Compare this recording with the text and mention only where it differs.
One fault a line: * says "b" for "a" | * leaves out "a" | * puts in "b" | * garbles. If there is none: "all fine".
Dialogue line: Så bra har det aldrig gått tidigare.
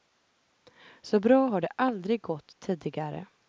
all fine